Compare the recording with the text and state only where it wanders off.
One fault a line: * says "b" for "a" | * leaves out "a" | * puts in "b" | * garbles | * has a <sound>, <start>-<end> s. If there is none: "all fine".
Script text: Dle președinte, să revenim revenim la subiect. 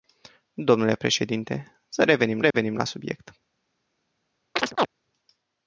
* has a dropout, 2.5-2.5 s
* has a chirp, 4.6-4.9 s